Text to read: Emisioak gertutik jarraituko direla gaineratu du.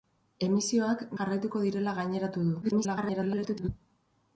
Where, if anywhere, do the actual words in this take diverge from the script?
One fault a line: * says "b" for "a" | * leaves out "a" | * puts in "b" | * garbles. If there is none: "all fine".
* leaves out "gertutik"
* garbles